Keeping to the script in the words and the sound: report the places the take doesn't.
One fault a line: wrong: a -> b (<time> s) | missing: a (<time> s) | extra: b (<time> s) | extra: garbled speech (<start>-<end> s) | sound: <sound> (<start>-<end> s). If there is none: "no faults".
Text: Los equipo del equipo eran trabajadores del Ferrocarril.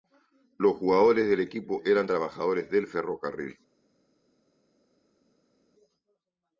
wrong: equipo -> jugadores (0.8 s)